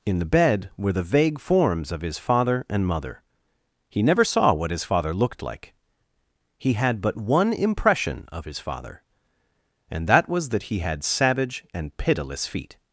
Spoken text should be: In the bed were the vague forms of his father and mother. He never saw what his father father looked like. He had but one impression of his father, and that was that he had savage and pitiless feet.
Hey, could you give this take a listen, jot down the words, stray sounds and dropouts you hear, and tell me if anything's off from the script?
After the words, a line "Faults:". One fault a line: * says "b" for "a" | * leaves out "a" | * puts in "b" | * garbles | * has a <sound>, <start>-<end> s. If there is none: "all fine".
In the bed were the vague forms of his father and mother. He never saw what his father looked like. He had but one impression of his father, and that was that he had savage and pitiless feet.
Faults:
* leaves out "father"